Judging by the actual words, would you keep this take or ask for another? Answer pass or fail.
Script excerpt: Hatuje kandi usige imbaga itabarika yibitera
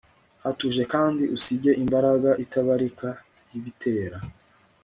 pass